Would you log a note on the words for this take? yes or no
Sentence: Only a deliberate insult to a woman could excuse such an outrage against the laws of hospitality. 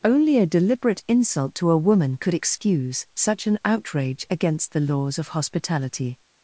no